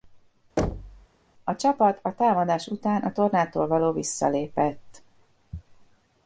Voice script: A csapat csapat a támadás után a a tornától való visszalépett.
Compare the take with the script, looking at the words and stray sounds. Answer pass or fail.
fail